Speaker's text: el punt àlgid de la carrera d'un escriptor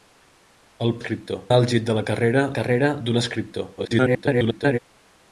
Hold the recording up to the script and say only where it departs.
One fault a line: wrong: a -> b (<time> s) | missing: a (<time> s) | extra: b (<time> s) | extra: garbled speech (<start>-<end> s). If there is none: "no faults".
wrong: punt -> escriptor (1.0 s)
extra: carrera (2.6 s)
extra: garbled speech (3.8-4.8 s)